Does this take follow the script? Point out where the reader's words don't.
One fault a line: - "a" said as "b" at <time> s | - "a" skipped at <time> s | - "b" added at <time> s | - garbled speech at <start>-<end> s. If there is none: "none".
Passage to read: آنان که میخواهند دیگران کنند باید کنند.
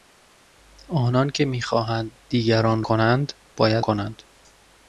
none